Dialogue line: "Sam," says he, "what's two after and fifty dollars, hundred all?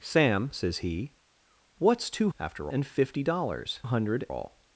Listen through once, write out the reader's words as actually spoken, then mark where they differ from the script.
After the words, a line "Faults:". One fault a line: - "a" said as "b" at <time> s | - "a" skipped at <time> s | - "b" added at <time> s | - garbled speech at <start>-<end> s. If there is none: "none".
"Sam," says he, "what's two after and fifty dollars, hundred all?
Faults:
none